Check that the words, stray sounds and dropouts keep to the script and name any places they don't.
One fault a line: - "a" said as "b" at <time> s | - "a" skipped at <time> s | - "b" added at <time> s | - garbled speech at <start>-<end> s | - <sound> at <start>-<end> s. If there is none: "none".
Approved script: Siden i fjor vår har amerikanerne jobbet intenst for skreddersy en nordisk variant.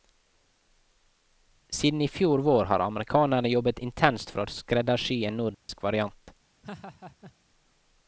- "å" added at 4.4 s
- dropout at 5.5-5.7 s
- laugh at 6.6-7.3 s